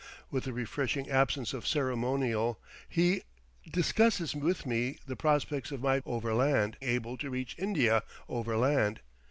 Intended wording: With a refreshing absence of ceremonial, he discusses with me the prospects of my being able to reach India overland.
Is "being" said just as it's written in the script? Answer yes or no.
no